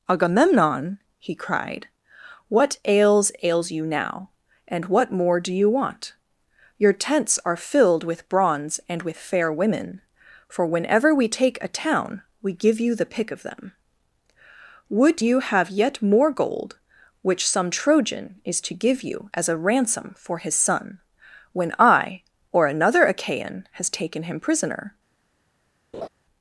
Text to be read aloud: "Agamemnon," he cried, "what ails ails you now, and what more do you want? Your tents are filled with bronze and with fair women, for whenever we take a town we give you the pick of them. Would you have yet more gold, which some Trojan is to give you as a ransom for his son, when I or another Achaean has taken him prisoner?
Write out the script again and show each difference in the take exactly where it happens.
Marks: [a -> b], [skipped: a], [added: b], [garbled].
"Agamemnon," he cried, "what ails ails you now, and what more do you want? Your tents are filled with bronze and with fair women, for whenever we take a town we give you the pick of them. Would you have yet more gold, which some Trojan is to give you as a ransom for his son, when I or another Achaean has taken him prisoner?